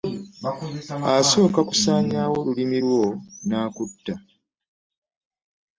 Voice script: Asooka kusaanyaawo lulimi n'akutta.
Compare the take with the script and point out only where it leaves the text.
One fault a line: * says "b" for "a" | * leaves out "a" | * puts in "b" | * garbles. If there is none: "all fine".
* puts in "lwo"